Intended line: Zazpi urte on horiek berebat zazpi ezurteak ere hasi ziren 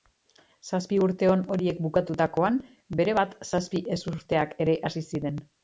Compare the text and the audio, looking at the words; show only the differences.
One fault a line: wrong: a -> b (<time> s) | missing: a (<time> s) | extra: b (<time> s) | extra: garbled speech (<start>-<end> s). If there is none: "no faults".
extra: bukatutakoan (1.9 s)